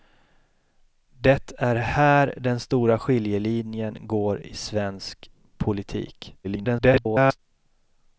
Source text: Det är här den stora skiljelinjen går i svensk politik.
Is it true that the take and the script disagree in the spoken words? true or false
true